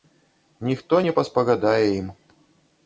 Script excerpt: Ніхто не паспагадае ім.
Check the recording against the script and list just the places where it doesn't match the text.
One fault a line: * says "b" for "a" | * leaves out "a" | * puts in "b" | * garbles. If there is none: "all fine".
all fine